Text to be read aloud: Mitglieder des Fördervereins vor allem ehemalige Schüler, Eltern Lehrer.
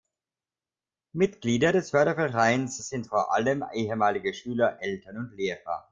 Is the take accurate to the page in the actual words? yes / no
no